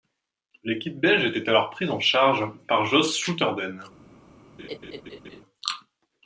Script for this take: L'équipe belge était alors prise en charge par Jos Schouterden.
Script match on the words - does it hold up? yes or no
yes